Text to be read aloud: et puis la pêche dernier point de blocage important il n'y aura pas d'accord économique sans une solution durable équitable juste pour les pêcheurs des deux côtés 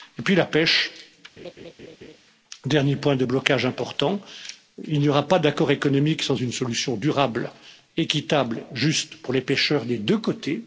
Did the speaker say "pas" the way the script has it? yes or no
yes